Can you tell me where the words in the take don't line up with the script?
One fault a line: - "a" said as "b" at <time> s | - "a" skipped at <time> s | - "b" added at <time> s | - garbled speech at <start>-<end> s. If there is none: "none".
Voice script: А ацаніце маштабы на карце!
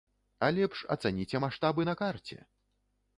- "лепш" added at 0.6 s